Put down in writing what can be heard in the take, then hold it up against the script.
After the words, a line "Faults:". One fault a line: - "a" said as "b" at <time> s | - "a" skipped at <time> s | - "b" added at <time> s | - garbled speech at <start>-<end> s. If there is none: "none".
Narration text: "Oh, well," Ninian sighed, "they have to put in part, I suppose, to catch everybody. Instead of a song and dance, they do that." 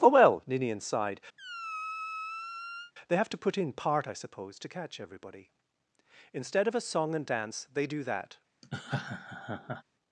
"Oh, well," Ninian sighed, "they have to put in part, I suppose, to catch everybody. Instead of a song and dance, they do that."
Faults:
none